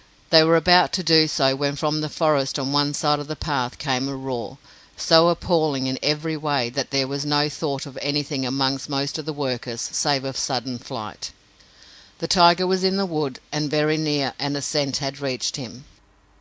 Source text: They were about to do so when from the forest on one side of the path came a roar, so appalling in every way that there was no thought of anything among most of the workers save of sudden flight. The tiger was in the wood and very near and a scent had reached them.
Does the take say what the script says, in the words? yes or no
no